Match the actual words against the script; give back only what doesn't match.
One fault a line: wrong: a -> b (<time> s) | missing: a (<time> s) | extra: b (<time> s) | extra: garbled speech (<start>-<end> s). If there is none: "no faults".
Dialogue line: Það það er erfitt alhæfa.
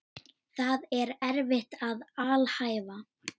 missing: það (0.9 s)
extra: að (1.9 s)